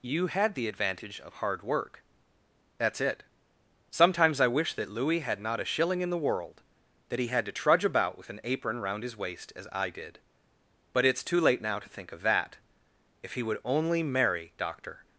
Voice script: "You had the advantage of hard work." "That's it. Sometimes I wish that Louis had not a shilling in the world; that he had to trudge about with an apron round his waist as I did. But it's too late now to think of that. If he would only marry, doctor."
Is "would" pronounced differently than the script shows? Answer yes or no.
no